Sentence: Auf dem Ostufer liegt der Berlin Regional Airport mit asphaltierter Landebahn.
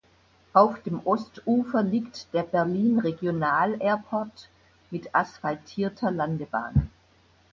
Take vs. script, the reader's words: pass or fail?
pass